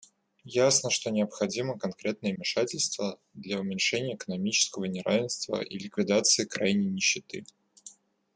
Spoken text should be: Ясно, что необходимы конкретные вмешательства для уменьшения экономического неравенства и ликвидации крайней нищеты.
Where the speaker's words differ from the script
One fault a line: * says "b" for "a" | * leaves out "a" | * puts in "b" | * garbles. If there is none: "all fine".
all fine